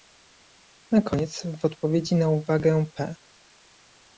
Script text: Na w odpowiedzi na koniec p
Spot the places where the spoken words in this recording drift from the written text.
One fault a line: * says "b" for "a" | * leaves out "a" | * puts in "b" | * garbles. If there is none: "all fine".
* puts in "koniec"
* says "uwagę" for "koniec"